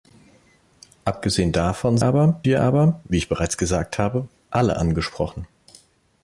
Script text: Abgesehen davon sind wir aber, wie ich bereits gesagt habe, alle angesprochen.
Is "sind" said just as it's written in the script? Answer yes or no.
no